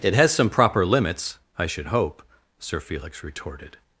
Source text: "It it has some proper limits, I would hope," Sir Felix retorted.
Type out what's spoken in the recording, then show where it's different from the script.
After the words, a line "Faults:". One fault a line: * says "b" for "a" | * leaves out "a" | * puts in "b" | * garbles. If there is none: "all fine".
"It has some proper limits, I should hope," Sir Felix retorted.
Faults:
* leaves out "it"
* says "should" for "would"